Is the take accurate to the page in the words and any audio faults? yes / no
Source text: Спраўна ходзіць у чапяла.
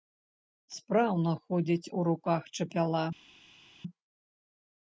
no